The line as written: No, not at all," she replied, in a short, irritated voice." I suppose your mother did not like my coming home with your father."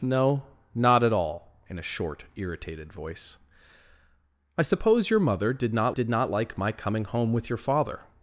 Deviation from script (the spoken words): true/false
true